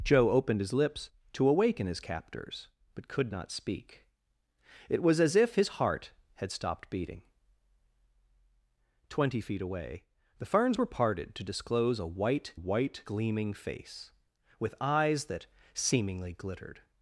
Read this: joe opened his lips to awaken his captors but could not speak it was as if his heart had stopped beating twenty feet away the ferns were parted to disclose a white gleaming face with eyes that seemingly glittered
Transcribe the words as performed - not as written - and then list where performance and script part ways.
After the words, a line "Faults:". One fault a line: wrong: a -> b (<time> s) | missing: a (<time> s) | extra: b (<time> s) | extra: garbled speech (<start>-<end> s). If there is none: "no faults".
joe opened his lips to awaken his captors but could not speak it was as if his heart had stopped beating twenty feet away the ferns were parted to disclose a white white gleaming face with eyes that seemingly glittered
Faults:
extra: white (12.5 s)